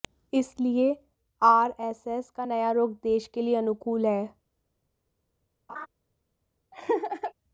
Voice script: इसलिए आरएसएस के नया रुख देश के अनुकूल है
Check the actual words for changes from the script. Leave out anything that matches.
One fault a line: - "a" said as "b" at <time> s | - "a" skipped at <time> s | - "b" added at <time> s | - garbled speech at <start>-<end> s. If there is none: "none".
- "के" said as "का" at 2.3 s
- "लिए" added at 3.4 s